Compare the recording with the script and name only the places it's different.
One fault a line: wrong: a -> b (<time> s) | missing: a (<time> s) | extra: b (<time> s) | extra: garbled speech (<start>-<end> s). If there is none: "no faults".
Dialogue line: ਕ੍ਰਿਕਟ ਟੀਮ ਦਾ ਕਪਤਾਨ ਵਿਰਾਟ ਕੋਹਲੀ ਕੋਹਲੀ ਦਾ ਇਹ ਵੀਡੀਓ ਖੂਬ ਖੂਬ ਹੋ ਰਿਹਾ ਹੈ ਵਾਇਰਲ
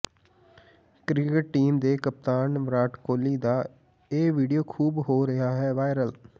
wrong: ਦਾ -> ਦੇ (1.8 s)
missing: ਕੋਹਲੀ (3.4 s)
missing: ਖੂਬ (5.0 s)